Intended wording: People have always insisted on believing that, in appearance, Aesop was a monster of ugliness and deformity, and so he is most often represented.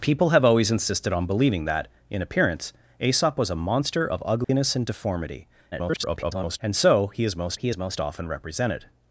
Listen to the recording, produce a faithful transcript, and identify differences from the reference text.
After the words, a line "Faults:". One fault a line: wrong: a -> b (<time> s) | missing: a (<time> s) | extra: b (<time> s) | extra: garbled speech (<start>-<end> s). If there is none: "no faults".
People have always insisted on believing that, in appearance, Aesop was a monster of ugliness and deformity, [garbled] and so he is most he is most often represented.
Faults:
extra: garbled speech (5.7-6.6 s)
extra: he is most (7.5 s)